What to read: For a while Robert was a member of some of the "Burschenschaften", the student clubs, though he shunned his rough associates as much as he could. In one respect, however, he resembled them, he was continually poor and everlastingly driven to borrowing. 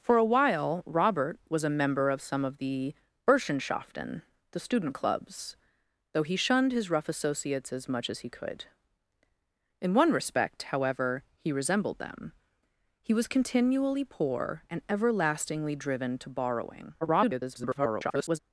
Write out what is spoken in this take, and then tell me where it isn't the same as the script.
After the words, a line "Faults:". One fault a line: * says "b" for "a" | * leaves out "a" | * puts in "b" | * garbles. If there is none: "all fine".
For a while Robert was a member of some of the "Burschenschaften", the student clubs, though he shunned his rough associates as much as he could. In one respect, however, he resembled them, he was continually poor and everlastingly driven to borrowing. [garbled]
Faults:
* garbles